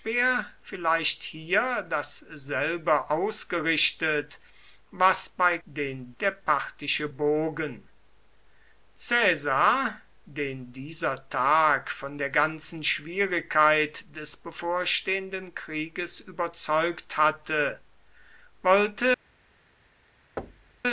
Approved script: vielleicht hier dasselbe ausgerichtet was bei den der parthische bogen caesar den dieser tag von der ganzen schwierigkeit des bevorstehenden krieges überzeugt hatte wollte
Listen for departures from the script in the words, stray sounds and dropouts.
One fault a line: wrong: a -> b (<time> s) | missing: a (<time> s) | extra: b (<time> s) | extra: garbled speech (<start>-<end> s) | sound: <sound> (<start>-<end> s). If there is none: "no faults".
sound: thud (20.4-20.8 s)